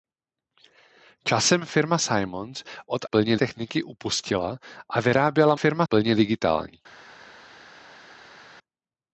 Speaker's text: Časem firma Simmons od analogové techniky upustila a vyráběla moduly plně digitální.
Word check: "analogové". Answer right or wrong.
wrong